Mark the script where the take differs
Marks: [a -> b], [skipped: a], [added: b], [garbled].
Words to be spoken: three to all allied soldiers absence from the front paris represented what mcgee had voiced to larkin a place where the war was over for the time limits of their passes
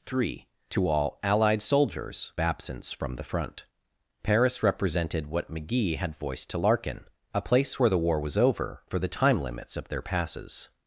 three to all allied soldiers absence from the front paris represented what mcgee had voiced to larkin a place where the war was over for the time limits of their passes